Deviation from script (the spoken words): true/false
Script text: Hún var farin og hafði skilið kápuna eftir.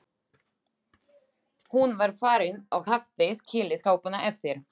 false